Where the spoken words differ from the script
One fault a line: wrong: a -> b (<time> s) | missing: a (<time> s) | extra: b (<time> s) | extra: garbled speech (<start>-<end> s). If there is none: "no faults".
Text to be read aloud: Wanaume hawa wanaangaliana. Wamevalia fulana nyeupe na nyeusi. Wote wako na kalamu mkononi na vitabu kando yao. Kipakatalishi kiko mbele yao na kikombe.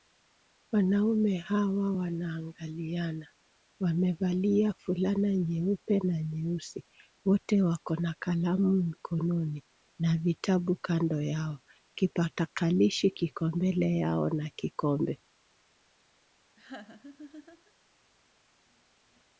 no faults